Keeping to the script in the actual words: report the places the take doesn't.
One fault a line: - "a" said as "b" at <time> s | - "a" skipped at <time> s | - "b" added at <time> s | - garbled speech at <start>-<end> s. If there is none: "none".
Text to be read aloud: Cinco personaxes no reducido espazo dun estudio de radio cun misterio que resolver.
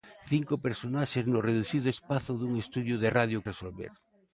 - "cun misterio que" skipped at 3.4 s